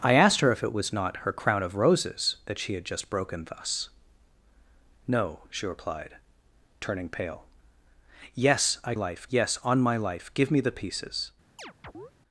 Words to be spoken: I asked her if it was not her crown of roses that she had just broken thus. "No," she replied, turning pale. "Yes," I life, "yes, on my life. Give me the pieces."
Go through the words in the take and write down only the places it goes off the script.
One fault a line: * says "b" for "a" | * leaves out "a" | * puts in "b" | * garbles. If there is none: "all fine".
all fine